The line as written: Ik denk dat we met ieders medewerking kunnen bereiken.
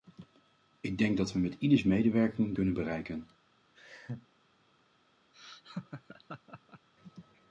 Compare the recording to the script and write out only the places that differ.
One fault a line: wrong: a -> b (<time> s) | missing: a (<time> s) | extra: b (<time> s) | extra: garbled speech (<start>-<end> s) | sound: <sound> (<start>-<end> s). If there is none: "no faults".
sound: laugh (3.7-4.3 s)
sound: laugh (5.3-6.9 s)